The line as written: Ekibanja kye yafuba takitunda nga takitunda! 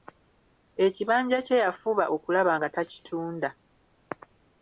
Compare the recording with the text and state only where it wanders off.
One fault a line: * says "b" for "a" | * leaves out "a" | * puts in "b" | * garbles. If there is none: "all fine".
* says "okulaba" for "takitunda"